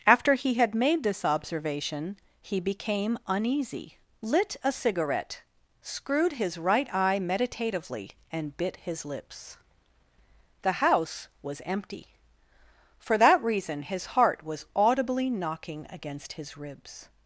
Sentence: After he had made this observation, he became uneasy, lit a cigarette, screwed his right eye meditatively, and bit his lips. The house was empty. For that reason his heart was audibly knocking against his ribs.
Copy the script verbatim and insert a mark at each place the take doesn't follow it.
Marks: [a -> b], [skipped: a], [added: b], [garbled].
After he had made this observation, he became uneasy, lit a cigarette, screwed his right eye meditatively, and bit his lips. The house was empty. For that reason his heart was audibly knocking against his ribs.